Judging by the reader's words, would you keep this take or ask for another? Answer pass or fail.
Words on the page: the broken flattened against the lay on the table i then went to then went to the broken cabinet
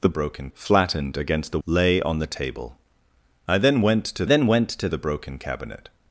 pass